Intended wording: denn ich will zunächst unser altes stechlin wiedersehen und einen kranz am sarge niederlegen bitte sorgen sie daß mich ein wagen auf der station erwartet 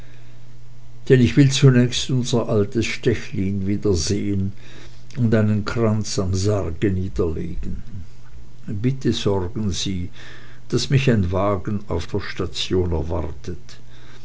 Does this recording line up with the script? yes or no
yes